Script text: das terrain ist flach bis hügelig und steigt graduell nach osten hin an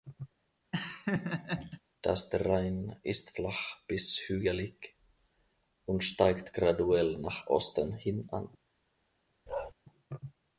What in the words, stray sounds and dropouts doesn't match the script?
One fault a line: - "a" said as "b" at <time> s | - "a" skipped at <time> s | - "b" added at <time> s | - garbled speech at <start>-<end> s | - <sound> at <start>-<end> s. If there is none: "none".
- laugh at 0.7-1.8 s
- bark at 9.5-9.7 s